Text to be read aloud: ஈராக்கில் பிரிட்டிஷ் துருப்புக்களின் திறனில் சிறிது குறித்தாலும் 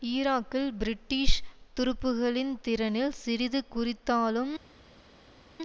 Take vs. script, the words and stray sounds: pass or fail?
pass